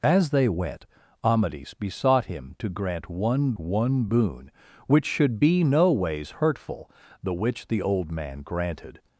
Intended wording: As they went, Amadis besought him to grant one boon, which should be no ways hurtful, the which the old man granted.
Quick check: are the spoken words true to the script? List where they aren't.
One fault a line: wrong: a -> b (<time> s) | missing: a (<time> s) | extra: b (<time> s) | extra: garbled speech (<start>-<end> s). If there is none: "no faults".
extra: one (3.6 s)